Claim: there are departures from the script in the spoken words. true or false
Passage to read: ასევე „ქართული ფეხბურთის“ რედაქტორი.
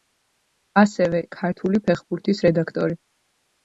false